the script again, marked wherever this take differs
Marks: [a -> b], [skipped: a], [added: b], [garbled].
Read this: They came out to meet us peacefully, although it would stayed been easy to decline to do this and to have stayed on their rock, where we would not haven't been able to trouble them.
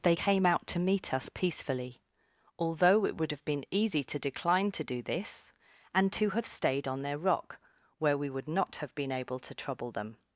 They came out to meet us peacefully, although it would [stayed -> have] been easy to decline to do this and to have stayed on their rock, where we would not [haven't -> have] been able to trouble them.